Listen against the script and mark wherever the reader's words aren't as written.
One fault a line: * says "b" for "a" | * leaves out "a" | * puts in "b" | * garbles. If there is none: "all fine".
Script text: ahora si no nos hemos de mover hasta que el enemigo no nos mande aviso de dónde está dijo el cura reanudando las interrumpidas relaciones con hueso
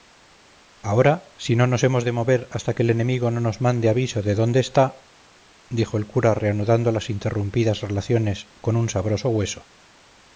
* puts in "un sabroso"